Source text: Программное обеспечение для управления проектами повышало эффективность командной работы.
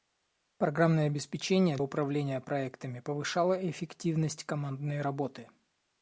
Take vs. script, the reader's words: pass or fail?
fail